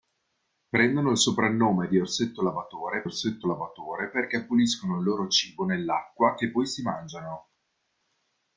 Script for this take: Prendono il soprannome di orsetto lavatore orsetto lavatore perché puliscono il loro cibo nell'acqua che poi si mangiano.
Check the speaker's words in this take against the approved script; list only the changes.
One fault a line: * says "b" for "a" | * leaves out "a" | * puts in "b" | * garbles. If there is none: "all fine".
all fine